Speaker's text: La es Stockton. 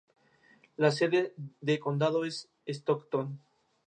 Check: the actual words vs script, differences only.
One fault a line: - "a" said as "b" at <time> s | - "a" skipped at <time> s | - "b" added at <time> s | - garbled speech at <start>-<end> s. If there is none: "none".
- "sede de condado" added at 0.9 s